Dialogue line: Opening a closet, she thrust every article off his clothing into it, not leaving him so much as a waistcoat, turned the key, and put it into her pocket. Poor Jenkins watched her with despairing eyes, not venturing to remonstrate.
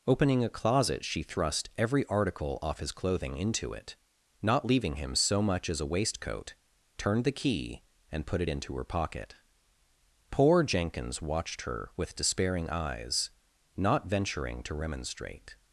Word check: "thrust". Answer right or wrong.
right